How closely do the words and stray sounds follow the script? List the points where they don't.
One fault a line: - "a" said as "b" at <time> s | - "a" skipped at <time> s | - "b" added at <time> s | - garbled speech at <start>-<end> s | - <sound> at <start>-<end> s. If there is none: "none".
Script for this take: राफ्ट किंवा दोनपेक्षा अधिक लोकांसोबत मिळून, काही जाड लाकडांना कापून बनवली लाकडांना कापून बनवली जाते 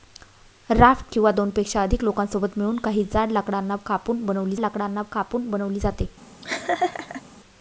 - laugh at 6.4-7.2 s